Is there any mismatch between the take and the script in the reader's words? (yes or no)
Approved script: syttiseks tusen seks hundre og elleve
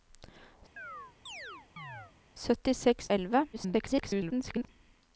yes